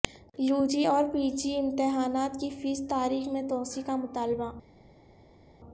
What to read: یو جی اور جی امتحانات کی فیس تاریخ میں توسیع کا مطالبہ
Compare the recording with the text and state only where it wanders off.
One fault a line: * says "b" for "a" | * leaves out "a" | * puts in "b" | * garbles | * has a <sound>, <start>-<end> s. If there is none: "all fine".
* puts in "پی"